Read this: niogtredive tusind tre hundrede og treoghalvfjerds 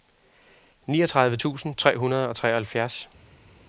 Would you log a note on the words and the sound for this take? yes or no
no